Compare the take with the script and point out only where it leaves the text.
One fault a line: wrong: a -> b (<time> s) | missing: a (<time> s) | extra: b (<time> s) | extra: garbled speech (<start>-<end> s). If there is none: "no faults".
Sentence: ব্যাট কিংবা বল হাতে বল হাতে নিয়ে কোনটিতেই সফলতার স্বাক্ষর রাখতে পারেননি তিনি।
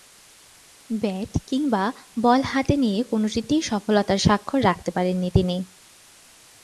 missing: বল হাতে (2.8 s)